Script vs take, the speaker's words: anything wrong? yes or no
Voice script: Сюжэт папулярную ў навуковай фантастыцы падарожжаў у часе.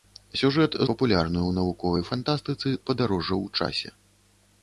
no